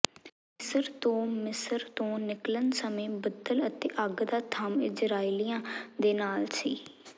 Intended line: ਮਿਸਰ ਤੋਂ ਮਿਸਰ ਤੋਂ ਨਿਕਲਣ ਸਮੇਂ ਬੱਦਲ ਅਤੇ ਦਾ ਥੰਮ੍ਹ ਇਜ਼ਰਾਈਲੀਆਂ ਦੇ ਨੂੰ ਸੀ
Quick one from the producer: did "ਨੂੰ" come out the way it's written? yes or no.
no